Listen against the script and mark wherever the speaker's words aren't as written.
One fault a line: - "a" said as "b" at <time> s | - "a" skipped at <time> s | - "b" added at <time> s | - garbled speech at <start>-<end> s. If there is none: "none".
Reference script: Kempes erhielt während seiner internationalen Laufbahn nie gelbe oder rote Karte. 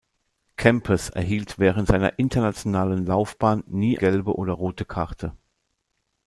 none